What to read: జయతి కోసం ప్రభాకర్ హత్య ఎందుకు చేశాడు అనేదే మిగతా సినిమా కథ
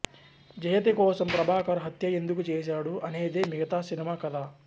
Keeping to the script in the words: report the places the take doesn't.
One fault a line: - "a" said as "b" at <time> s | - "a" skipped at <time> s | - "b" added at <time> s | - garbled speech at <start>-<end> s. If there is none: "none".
none